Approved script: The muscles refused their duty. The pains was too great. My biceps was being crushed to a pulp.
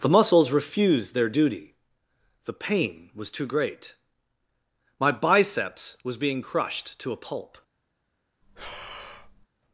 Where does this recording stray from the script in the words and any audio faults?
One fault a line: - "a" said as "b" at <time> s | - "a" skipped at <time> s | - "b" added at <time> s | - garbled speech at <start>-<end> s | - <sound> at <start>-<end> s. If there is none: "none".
- "pains" said as "pain" at 2.5 s
- breath at 8.4-9.5 s